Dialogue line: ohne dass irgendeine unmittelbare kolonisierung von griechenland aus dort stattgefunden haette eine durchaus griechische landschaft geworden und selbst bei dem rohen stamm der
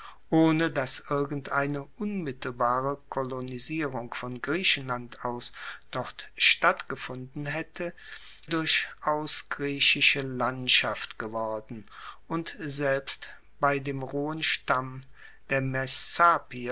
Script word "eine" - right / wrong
wrong